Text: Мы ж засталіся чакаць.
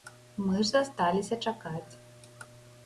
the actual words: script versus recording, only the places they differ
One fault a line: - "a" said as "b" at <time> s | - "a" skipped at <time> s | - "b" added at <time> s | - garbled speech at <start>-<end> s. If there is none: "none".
none